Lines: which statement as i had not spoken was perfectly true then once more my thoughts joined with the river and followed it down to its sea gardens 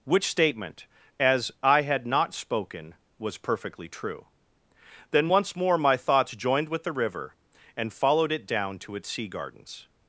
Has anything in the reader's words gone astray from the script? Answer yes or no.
no